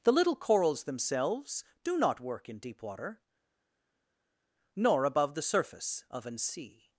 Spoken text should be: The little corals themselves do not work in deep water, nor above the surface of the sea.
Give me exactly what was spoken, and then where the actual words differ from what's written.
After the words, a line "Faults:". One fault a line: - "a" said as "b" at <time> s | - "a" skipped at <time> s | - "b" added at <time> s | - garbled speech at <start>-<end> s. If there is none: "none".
The little corals themselves do not work in deep water, nor above the surface of an sea.
Faults:
- "the" said as "an" at 6.3 s